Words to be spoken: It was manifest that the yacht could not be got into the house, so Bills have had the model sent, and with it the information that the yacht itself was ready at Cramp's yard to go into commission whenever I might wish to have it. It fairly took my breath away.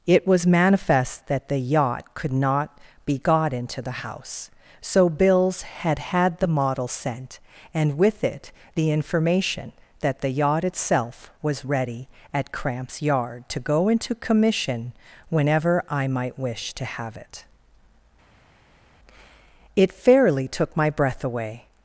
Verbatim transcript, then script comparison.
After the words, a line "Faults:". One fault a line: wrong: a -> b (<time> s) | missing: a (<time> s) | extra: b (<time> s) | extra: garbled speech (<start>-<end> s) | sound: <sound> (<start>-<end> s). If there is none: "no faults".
It was manifest that the yacht could not be got into the house, so Bills had had the model sent, and with it the information that the yacht itself was ready at Cramp's yard to go into commission whenever I might wish to have it. It fairly took my breath away.
Faults:
wrong: have -> had (5.6 s)